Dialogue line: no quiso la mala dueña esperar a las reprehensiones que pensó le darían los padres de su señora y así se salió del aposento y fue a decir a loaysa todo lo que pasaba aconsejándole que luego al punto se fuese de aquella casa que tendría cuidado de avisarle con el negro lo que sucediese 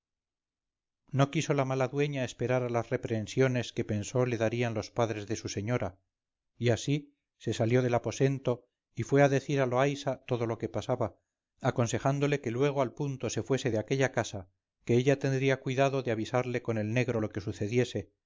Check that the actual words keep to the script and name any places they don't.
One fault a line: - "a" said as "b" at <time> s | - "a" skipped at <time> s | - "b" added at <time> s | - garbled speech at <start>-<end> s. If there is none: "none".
- "ella" added at 15.0 s